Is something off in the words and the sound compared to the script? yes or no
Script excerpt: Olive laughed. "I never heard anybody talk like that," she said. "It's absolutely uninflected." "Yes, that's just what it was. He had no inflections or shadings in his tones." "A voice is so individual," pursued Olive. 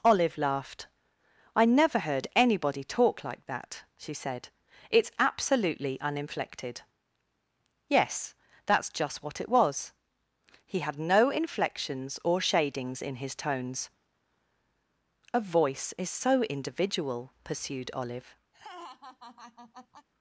yes